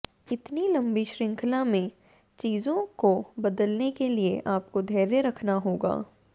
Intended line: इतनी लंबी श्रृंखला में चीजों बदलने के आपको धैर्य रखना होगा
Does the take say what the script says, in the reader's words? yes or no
no